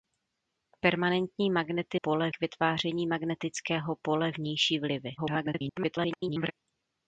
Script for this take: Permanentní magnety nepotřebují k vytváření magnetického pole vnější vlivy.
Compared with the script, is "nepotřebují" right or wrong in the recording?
wrong